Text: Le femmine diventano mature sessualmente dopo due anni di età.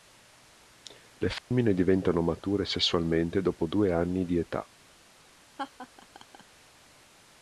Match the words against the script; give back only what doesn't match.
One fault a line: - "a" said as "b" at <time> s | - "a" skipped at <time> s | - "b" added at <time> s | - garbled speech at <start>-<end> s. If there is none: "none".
none